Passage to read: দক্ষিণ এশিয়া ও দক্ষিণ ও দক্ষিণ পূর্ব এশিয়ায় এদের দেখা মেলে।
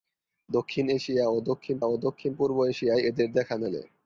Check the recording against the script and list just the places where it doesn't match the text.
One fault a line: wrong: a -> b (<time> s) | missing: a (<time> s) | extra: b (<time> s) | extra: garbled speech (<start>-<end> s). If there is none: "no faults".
no faults